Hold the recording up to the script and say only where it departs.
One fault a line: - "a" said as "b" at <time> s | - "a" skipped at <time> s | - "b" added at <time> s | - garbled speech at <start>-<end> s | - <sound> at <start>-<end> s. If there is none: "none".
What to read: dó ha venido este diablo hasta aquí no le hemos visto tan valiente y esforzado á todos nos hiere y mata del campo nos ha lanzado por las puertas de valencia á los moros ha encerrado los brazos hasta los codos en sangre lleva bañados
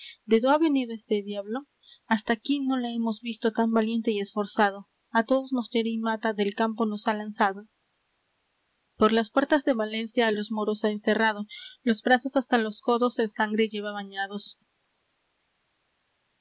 none